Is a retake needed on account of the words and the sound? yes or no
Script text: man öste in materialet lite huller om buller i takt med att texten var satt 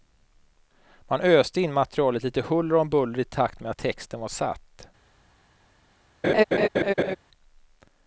yes